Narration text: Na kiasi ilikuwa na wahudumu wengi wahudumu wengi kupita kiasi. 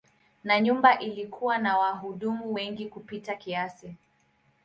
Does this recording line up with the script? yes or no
no